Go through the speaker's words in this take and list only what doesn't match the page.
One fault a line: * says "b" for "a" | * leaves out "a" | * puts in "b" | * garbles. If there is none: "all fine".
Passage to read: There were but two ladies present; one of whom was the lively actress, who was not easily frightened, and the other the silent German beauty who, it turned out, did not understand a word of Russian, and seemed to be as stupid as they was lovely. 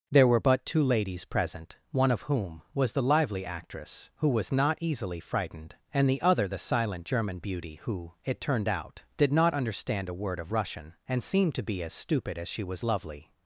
* says "she" for "they"